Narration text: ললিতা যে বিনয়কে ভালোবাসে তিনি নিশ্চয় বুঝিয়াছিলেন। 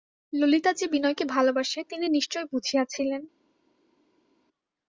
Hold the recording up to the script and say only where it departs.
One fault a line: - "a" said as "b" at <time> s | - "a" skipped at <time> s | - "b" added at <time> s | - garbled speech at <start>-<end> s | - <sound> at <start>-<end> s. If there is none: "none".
none